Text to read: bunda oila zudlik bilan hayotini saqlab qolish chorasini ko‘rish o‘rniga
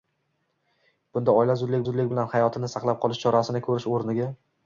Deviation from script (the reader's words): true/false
true